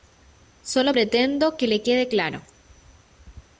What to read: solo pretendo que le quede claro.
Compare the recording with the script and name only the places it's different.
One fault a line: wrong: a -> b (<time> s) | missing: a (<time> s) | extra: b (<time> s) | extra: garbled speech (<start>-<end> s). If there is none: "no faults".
no faults